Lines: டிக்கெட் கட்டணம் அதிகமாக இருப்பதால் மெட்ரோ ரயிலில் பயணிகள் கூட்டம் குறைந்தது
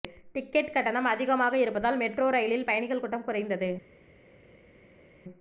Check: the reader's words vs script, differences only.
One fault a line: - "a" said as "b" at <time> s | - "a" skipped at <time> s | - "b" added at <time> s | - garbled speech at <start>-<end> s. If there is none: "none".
none